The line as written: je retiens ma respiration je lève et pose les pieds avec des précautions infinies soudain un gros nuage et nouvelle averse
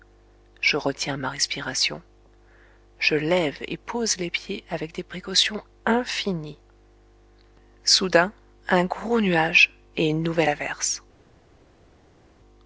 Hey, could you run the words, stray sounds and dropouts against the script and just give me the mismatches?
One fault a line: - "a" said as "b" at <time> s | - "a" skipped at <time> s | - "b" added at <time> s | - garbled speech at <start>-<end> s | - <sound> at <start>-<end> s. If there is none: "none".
- "une" added at 10.1 s